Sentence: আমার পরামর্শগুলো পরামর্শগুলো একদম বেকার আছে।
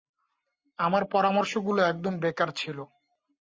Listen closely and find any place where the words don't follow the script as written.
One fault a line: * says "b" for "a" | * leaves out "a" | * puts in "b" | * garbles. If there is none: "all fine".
* leaves out "পরামর্শগুলো"
* says "ছিল" for "আছে"